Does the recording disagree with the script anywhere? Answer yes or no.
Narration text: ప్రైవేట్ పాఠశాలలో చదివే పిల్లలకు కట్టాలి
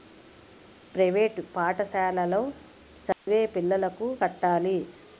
no